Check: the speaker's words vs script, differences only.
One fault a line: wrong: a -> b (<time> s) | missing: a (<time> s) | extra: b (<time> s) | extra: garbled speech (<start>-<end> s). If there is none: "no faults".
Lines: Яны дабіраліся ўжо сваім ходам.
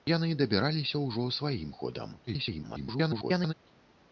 extra: garbled speech (2.3-3.5 s)